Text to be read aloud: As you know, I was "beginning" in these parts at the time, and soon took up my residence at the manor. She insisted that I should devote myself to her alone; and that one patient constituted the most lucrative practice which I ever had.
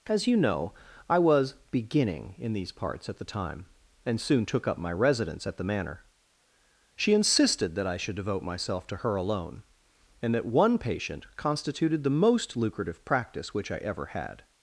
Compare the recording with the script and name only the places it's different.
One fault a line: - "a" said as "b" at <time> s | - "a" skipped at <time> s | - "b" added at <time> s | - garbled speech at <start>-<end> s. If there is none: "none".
none